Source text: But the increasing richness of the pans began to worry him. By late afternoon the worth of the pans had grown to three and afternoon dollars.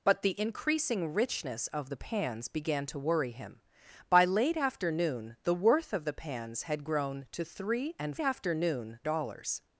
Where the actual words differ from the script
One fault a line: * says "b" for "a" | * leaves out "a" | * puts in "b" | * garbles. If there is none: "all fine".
all fine